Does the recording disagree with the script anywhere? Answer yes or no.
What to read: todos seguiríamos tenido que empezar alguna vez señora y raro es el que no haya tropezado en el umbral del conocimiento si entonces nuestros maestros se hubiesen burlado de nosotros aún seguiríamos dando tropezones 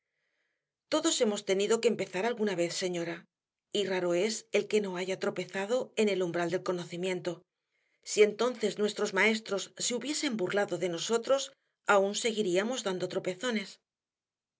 yes